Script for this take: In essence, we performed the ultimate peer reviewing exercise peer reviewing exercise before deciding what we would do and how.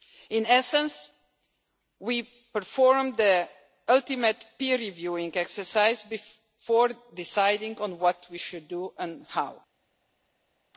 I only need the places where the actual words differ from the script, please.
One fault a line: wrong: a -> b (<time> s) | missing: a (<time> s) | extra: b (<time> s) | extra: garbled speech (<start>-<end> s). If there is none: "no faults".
missing: peer reviewing exercise (6.0 s)
extra: on (7.8 s)
wrong: would -> should (8.3 s)